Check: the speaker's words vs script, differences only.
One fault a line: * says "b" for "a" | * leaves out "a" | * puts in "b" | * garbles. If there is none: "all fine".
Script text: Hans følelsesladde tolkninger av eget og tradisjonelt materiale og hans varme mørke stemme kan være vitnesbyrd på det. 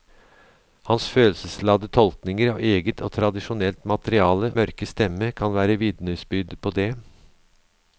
* leaves out "og hans varme"